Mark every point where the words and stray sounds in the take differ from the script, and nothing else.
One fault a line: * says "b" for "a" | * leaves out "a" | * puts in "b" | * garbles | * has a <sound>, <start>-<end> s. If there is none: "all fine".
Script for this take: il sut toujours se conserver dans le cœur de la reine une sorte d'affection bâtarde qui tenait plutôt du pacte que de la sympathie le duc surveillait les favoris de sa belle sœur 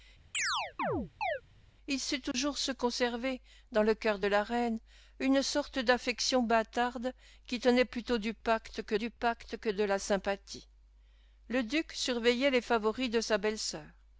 * has a chirp, 0.3-1.4 s
* has a dropout, 2.3-2.3 s
* puts in "du pacte que"